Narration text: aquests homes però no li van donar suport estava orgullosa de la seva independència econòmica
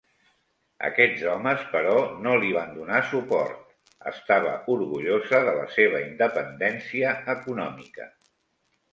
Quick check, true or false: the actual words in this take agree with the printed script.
true